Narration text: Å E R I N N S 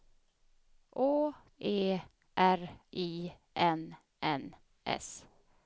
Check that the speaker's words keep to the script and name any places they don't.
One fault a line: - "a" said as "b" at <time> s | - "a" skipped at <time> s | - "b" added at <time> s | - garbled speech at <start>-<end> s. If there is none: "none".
none